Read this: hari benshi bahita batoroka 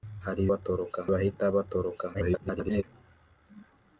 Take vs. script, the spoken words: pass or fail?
fail